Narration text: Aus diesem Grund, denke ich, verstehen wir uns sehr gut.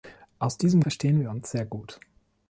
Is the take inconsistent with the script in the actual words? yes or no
yes